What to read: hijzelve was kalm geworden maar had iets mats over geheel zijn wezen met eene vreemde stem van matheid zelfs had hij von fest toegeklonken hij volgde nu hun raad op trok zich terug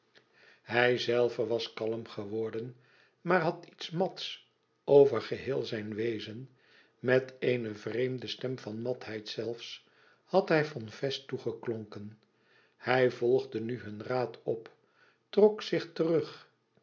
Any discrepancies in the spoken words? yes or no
no